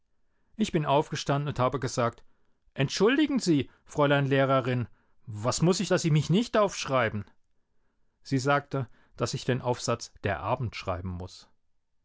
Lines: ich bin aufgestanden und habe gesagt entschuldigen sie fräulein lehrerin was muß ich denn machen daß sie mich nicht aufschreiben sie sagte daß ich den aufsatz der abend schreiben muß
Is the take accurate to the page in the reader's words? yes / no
no